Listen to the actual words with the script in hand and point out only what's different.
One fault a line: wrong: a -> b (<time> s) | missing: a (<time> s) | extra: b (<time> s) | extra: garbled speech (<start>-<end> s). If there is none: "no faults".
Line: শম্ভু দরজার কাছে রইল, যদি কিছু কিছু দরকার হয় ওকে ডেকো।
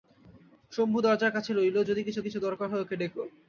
no faults